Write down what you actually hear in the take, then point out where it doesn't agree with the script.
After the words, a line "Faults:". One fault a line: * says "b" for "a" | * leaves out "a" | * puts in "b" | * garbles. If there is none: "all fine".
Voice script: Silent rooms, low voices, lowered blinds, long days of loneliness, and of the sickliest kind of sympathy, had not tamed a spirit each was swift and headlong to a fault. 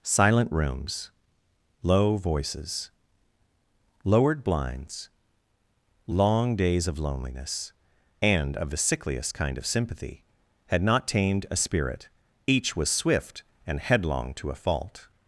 Silent rooms, low voices, lowered blinds, long days of loneliness, and of the sickliest kind of sympathy, had not tamed a spirit each was swift and headlong to a fault.
Faults:
all fine